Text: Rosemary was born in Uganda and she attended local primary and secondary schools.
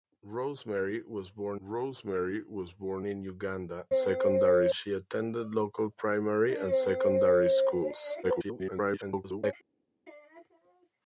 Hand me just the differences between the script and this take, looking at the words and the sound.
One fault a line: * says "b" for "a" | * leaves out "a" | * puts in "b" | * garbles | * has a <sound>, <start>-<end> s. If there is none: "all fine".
* puts in "rosemary was born"
* says "secondary" for "and"
* garbles